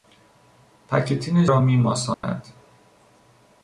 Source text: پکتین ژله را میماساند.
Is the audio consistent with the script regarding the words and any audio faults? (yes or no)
no